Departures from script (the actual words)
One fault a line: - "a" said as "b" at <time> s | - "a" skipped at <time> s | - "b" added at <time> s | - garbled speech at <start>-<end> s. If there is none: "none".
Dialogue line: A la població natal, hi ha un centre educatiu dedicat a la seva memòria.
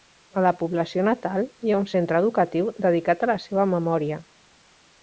none